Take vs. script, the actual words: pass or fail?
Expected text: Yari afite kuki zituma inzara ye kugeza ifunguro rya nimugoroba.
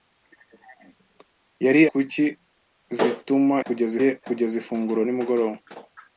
fail